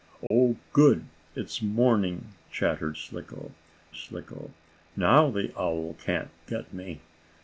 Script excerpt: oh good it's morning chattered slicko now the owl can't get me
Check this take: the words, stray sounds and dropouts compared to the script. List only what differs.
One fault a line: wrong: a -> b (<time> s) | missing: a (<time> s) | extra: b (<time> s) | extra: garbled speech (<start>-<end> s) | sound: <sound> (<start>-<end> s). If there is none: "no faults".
sound: dropout (0.3-0.3 s)
extra: slicko (3.9 s)